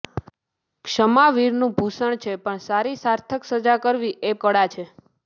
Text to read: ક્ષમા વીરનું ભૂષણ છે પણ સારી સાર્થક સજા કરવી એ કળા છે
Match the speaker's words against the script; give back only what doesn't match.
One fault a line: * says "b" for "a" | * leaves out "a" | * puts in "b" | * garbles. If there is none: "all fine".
all fine